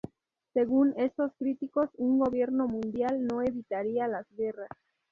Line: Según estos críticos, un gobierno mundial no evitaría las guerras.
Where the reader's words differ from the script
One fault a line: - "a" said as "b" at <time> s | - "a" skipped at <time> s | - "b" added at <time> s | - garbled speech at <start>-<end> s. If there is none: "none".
none